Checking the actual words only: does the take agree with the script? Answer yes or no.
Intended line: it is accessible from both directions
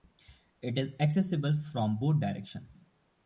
yes